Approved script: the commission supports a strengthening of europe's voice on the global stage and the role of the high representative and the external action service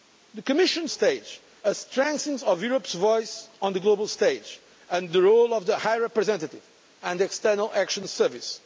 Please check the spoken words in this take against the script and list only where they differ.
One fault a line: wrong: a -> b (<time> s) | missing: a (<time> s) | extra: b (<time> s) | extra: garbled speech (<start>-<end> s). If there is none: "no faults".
wrong: supports -> stage (0.9 s)